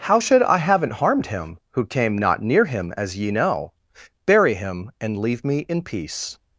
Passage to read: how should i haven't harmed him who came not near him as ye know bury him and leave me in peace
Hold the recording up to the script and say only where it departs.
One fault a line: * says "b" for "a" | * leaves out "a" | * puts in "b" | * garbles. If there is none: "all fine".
all fine